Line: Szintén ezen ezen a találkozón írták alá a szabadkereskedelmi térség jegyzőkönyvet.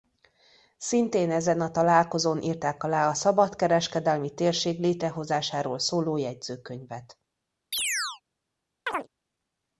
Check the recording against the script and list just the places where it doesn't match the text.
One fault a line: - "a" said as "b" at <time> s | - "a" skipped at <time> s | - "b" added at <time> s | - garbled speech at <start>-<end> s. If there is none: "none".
- "ezen" skipped at 1.6 s
- "létrehozásáról szóló" added at 4.8 s